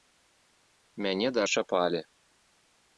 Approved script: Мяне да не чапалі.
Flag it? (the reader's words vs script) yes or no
no